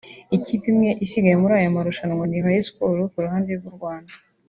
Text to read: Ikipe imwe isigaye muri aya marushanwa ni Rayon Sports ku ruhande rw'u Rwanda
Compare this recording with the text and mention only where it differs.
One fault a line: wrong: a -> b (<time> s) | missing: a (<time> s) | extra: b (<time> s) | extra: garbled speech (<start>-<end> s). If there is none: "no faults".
no faults